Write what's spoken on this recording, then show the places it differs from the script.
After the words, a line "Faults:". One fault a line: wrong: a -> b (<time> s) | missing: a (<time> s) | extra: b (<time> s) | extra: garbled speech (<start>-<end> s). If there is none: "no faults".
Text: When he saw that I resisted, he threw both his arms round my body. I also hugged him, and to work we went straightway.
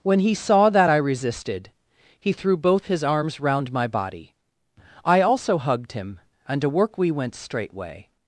When he saw that I resisted, he threw both his arms round my body. I also hugged him, and to work we went straightway.
Faults:
no faults